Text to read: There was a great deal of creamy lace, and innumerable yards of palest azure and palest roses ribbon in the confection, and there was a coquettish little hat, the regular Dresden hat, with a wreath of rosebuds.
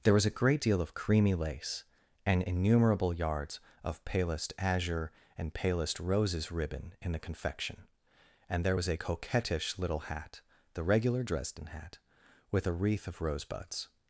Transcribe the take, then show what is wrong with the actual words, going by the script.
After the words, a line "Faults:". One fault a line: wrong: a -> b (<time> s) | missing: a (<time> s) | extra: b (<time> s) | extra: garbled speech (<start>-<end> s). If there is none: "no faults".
There was a great deal of creamy lace, and innumerable yards of palest azure and palest roses ribbon in the confection, and there was a coquettish little hat, the regular Dresden hat, with a wreath of rosebuds.
Faults:
no faults